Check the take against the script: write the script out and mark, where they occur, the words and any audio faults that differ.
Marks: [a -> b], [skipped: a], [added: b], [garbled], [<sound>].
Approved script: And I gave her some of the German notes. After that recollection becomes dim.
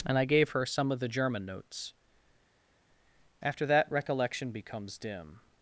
And I gave her some of the German notes. After that recollection becomes dim.